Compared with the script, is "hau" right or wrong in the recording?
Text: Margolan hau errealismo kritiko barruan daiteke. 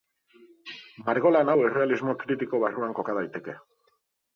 right